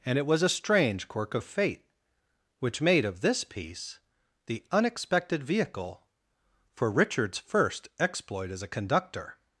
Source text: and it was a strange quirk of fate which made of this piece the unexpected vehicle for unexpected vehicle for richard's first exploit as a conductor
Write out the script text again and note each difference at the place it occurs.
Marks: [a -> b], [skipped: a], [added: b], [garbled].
and it was a strange quirk of fate which made of this piece the unexpected vehicle for [skipped: unexpected vehicle for] richard's first exploit as a conductor